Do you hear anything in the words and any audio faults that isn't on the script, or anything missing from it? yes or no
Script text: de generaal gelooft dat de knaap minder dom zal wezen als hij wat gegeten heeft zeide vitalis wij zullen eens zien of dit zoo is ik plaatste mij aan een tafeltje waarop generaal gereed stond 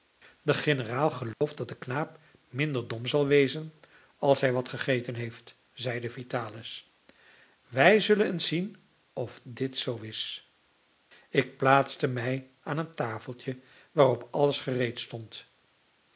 yes